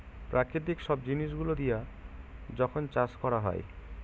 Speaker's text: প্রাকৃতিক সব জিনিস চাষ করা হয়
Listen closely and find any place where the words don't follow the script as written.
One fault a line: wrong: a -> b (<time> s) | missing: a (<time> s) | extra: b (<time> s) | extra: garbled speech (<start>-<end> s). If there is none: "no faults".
extra: গুলো দিয়া যখন (1.3 s)